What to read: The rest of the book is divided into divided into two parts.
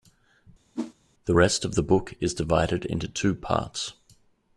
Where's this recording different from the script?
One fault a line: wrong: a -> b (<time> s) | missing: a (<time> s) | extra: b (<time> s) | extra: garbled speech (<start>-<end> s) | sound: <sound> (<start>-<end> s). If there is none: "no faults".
sound: whoosh (0.7-0.9 s)
missing: divided into (3.1 s)